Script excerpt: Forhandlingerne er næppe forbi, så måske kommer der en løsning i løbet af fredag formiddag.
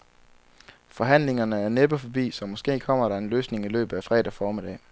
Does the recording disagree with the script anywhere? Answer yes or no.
no